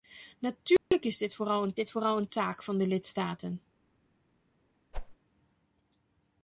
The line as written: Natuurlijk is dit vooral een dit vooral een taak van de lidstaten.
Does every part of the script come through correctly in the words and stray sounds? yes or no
no